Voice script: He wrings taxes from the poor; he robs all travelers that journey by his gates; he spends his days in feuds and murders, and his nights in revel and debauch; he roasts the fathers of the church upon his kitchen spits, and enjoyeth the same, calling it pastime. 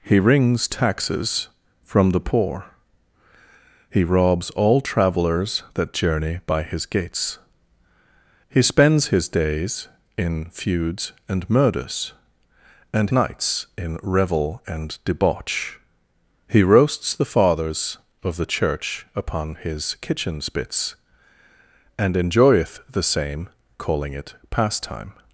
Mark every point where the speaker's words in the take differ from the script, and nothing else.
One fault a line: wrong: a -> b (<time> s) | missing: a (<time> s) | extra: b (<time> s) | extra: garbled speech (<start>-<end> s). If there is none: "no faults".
missing: his (13.1 s)